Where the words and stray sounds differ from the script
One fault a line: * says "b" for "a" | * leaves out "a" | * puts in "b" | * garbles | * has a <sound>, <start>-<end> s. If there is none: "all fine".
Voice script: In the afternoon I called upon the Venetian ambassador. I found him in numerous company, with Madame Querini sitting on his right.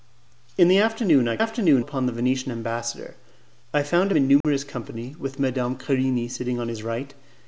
* says "afternoon" for "called"
* leaves out "him"
* has a dropout, 4.4-4.4 s